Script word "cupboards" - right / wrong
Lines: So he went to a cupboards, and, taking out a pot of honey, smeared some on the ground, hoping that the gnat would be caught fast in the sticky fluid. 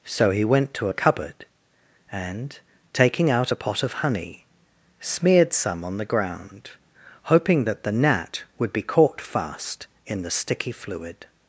wrong